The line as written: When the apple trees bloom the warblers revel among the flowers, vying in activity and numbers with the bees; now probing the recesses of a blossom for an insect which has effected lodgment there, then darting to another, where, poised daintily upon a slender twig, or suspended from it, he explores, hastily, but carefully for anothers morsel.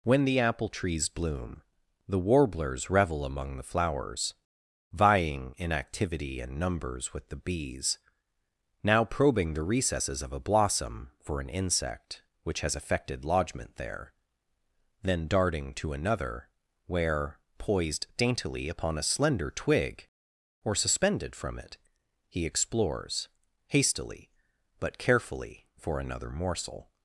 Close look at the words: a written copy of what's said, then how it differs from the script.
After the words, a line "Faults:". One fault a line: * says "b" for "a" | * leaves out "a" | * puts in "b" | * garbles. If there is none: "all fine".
When the apple trees bloom the warblers revel among the flowers, vying in activity and numbers with the bees; now probing the recesses of a blossom for an insect which has effected lodgment there, then darting to another, where, poised daintily upon a slender twig, or suspended from it, he explores, hastily, but carefully for another morsel.
Faults:
* says "another" for "anothers"